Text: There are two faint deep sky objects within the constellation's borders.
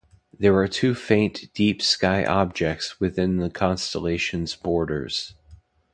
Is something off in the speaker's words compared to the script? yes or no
no